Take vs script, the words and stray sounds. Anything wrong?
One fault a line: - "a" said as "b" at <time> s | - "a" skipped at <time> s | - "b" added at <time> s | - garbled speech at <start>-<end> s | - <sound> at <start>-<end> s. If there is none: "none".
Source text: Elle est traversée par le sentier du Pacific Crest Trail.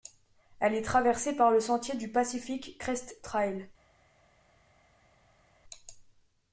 none